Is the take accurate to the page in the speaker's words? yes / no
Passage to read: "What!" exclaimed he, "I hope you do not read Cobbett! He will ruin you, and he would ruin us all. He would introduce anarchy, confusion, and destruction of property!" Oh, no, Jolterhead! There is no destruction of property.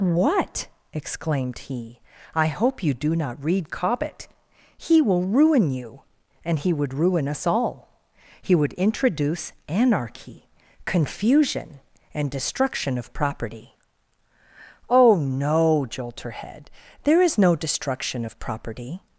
yes